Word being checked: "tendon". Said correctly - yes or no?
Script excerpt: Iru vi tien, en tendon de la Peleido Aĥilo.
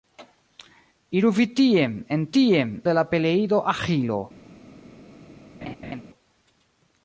no